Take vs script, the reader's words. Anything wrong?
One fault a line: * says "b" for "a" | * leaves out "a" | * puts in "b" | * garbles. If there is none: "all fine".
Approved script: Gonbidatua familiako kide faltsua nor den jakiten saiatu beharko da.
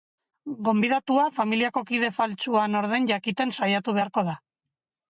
all fine